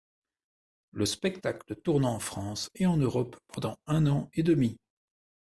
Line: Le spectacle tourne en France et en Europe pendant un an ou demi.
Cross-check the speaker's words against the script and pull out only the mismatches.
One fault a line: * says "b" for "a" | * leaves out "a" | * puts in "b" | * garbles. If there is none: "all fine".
* says "et" for "ou"